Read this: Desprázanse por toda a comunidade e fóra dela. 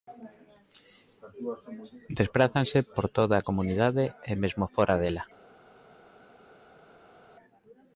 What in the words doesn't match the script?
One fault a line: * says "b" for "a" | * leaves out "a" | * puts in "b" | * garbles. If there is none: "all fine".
* puts in "mesmo"